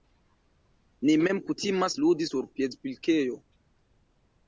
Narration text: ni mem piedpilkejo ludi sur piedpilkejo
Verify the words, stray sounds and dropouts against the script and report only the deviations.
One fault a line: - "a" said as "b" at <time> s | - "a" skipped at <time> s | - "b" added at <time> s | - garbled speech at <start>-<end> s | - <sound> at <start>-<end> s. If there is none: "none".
- "piedpilkejo" said as "kutimas" at 1.5 s